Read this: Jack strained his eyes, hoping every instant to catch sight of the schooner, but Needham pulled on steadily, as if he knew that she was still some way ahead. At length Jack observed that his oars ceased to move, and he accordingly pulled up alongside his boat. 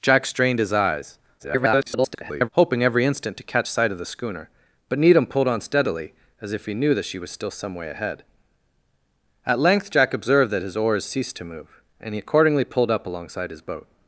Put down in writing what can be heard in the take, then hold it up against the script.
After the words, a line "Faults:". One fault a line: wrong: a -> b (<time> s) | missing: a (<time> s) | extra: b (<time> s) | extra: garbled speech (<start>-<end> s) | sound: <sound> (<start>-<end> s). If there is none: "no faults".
Jack strained his eyes, [garbled] hoping every instant to catch sight of the schooner, but Needham pulled on steadily, as if he knew that she was still some way ahead. At length Jack observed that his oars ceased to move, and he accordingly pulled up alongside his boat.
Faults:
extra: garbled speech (1.4-2.5 s)